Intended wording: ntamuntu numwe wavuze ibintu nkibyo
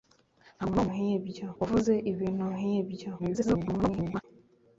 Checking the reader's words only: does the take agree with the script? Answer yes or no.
no